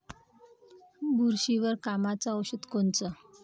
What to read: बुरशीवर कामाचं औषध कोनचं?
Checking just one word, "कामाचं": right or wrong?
right